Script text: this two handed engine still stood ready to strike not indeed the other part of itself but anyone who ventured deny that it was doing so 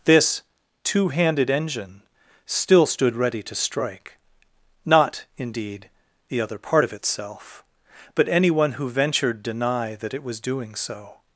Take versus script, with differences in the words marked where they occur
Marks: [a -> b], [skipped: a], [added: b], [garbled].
this two handed engine still stood ready to strike not indeed the other part of itself but anyone who ventured deny that it was doing so